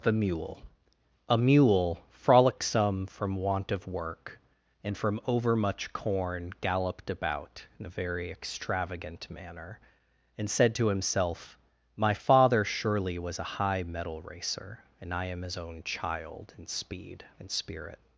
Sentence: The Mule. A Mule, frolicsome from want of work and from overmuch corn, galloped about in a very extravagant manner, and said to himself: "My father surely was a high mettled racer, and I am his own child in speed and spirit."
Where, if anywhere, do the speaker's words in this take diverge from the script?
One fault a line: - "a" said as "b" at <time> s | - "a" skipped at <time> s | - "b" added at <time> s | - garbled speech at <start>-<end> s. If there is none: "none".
- "mettled" said as "mettle" at 13.8 s